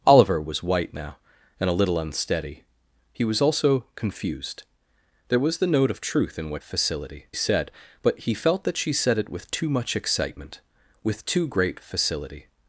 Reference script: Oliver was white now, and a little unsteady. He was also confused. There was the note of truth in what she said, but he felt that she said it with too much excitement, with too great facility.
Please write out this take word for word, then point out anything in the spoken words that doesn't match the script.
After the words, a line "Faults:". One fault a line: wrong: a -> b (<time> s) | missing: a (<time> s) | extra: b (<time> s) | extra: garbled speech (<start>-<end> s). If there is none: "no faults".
Oliver was white now, and a little unsteady. He was also confused. There was the note of truth in what facility said, but he felt that she said it with too much excitement, with too great facility.
Faults:
wrong: she -> facility (6.6 s)